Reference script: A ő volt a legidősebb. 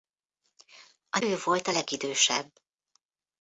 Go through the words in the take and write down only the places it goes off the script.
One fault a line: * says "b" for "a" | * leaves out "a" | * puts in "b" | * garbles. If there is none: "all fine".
all fine